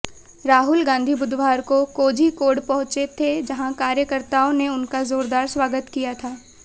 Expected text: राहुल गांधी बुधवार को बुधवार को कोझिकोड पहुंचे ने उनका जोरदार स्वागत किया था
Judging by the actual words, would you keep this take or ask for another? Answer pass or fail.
fail